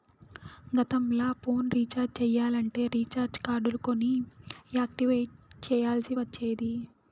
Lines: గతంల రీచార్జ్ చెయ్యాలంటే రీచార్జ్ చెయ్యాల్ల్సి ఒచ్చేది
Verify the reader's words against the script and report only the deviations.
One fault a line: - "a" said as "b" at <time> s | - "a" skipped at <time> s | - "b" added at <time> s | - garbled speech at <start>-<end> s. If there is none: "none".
- "ఫోన్" added at 1.4 s
- "కార్డులు కొని యాక్టివేట్" added at 3.4 s